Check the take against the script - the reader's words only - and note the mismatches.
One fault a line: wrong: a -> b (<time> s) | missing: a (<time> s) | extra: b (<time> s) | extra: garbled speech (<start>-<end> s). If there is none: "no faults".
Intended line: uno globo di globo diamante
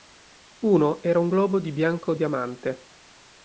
extra: era un (1.0 s)
wrong: globo -> bianco (1.7 s)